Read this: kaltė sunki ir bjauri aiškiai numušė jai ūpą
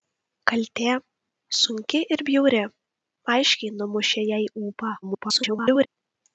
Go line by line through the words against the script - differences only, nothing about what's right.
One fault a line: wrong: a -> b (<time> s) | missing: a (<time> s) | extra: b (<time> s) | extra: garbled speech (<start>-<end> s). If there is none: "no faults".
extra: garbled speech (5.0-5.9 s)